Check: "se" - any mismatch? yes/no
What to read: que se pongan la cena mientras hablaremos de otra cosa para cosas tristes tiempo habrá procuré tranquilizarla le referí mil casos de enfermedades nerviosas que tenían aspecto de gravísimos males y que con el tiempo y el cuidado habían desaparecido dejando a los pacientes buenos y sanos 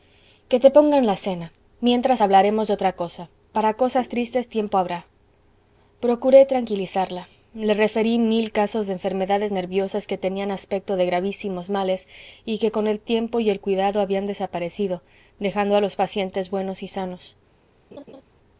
yes